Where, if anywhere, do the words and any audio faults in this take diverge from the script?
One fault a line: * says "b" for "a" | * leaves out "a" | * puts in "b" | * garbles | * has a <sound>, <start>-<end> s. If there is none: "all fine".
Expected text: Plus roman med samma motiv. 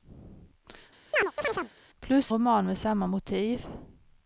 * has a chirp, 1.1-1.7 s